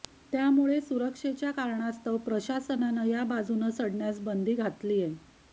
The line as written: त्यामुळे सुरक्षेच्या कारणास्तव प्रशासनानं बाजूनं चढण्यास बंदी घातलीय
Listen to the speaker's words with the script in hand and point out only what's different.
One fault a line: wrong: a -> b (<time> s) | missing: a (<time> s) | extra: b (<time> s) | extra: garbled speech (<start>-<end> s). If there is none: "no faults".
extra: या (3.1 s)